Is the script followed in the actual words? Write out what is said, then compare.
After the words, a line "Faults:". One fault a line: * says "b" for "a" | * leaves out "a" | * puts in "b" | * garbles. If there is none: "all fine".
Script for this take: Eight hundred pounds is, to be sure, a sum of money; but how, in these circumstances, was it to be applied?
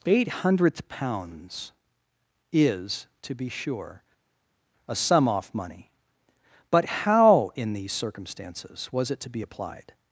Eight hundredth pounds is, to be sure, a sum off money; but how, in these circumstances, was it to be applied?
Faults:
* says "hundredth" for "hundred"
* says "off" for "of"